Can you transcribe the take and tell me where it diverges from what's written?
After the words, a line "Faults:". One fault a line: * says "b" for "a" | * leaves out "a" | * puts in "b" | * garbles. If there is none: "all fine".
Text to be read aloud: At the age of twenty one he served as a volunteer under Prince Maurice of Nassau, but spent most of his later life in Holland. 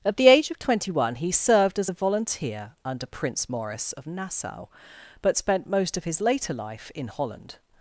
At the age of twenty one he served as a volunteer under Prince Maurice of Nassau, but spent most of his later life in Holland.
Faults:
all fine